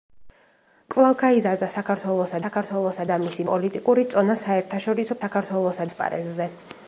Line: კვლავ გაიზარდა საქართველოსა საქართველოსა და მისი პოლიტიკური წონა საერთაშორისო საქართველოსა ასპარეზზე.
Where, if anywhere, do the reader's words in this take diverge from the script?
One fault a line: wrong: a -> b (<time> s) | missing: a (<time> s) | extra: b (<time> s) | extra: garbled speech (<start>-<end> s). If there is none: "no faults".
no faults